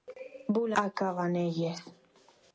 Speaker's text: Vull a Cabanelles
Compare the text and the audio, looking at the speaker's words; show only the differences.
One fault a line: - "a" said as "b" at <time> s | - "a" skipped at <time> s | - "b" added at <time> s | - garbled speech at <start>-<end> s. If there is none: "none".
none